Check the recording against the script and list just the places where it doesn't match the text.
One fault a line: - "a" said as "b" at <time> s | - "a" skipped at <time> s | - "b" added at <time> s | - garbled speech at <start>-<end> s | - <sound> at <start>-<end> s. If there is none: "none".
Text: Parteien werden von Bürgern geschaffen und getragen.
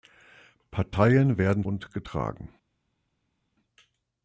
- "von Bürgern geschaffen" skipped at 1.6 s